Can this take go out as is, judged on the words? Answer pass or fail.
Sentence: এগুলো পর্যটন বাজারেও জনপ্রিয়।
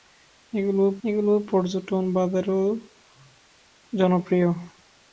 fail